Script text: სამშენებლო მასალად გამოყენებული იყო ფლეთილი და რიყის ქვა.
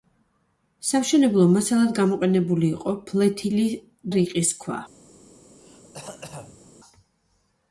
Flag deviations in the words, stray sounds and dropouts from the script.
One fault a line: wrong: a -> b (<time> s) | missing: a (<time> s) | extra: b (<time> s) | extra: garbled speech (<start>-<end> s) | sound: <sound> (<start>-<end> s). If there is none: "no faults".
missing: და (3.7 s)
sound: throat clearing (5.6-6.7 s)